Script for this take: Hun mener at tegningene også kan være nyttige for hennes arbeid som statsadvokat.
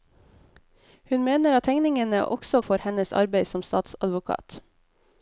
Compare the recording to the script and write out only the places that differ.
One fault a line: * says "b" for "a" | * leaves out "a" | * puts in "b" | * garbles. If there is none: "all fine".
* leaves out "kan være nyttige"